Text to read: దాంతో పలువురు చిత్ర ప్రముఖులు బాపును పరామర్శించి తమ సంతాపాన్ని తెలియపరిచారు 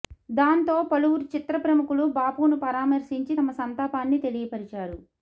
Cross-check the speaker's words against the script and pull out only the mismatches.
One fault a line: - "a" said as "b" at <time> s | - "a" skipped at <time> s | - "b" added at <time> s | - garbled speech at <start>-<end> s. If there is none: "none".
none